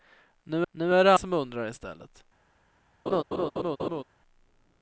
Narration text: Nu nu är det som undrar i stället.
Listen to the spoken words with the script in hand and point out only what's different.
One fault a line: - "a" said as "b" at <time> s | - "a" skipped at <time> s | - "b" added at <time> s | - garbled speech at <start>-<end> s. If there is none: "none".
none